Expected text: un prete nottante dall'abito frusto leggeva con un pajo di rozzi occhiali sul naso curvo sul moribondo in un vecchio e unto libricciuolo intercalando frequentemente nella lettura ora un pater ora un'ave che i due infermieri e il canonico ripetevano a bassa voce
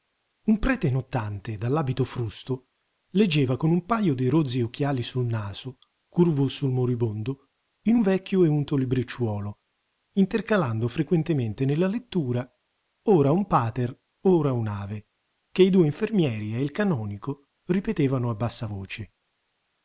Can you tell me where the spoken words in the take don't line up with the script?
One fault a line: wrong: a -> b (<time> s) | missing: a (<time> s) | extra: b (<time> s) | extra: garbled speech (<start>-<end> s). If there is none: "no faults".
no faults